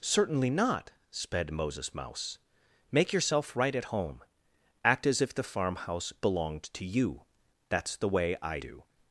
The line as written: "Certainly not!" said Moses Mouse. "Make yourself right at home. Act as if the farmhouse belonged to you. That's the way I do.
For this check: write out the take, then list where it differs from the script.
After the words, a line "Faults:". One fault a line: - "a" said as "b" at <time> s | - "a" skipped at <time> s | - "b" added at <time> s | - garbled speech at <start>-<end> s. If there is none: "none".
"Certainly not!" sped Moses Mouse. "Make yourself right at home. Act as if the farmhouse belonged to you. That's the way I do.
Faults:
- "said" said as "sped" at 1.1 s